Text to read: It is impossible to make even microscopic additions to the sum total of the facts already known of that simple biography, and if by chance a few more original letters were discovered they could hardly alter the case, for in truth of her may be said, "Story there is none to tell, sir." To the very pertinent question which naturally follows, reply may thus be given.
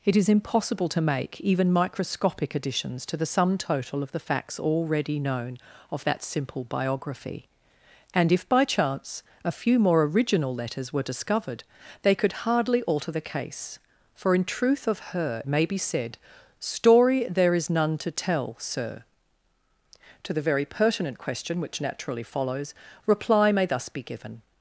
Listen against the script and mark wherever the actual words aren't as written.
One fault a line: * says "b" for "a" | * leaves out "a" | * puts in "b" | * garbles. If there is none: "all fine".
all fine